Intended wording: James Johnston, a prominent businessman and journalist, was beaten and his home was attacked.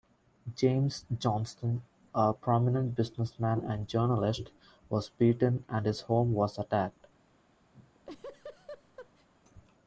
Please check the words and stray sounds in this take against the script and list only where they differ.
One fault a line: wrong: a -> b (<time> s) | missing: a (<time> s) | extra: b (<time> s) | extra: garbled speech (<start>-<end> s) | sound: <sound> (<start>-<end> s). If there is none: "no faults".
sound: laugh (7.7-9.3 s)